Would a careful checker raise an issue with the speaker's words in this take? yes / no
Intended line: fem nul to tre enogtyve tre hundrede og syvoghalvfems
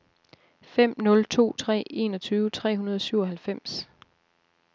no